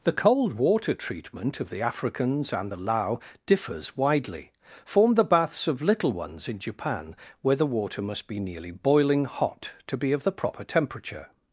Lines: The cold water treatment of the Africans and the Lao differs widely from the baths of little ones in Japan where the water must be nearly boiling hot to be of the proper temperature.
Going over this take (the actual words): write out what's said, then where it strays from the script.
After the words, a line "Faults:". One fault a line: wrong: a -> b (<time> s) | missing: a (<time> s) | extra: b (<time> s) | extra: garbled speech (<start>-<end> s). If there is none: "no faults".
The cold water treatment of the Africans and the Lao differs widely form the baths of little ones in Japan where the water must be nearly boiling hot to be of the proper temperature.
Faults:
wrong: from -> form (4.8 s)